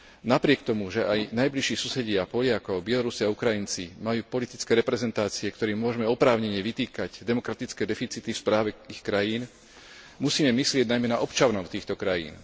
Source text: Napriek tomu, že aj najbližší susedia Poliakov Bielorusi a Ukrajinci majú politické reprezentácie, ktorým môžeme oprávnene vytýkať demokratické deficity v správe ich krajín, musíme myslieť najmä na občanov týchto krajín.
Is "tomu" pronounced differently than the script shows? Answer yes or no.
no